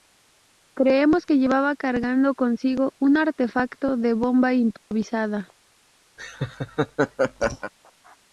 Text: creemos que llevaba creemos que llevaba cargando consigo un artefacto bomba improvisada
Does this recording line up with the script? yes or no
no